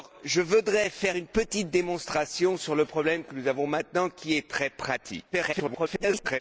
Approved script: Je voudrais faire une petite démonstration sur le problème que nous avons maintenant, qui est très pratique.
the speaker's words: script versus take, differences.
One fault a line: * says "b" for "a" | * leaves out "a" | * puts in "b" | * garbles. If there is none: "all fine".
* garbles